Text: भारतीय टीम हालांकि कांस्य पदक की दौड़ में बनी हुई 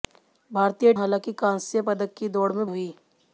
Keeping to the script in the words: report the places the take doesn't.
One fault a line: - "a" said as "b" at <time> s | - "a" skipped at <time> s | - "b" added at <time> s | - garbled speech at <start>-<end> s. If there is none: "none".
- "टीम" skipped at 0.9 s
- "बनी" skipped at 2.7 s